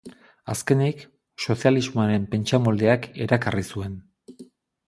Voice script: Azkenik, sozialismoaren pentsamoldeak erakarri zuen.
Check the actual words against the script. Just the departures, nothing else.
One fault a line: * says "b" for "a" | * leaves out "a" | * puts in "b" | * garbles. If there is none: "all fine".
all fine